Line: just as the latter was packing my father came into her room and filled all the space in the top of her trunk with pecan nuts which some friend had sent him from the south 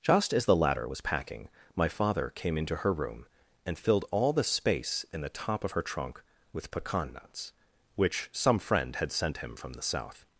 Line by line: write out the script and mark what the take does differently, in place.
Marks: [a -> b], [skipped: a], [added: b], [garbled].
just as the latter was packing my father came into her room and filled all the space in the top of her trunk with pecan nuts which some friend had sent him from the south